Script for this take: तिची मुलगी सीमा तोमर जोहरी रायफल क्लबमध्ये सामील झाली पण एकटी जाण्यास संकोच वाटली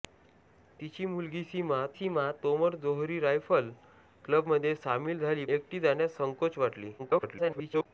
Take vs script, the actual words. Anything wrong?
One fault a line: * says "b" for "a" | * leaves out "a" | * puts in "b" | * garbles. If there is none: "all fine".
* puts in "सीमा"
* leaves out "पण"
* garbles